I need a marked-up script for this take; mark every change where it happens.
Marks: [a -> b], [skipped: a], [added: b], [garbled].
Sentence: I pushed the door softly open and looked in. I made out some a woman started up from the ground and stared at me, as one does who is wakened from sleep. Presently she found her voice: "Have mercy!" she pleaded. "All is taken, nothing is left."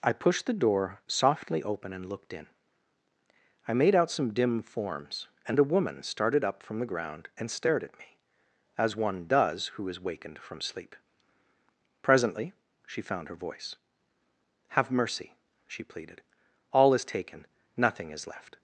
I pushed the door softly open and looked in. I made out some [added: dim forms and] a woman started up from the ground and stared at me, as one does who is wakened from sleep. Presently she found her voice: "Have mercy!" she pleaded. "All is taken, nothing is left."